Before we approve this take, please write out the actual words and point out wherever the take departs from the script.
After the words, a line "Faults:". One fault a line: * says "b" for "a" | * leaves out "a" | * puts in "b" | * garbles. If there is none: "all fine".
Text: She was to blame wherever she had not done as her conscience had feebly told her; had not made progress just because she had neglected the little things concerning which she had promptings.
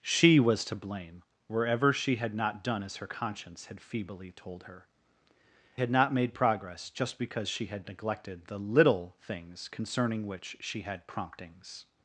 She was to blame wherever she had not done as her conscience had feebly told her; had not made progress just because she had neglected the little things concerning which she had promptings.
Faults:
all fine